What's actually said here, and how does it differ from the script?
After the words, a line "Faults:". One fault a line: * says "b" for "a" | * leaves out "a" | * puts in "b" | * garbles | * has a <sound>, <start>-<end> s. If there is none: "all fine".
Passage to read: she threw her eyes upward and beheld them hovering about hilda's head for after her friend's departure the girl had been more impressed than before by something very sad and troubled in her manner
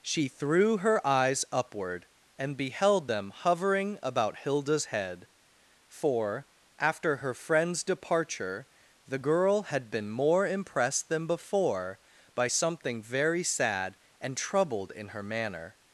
she threw her eyes upward and beheld them hovering about hilda's head for after her friend's departure the girl had been more impressed than before by something very sad and troubled in her manner
Faults:
all fine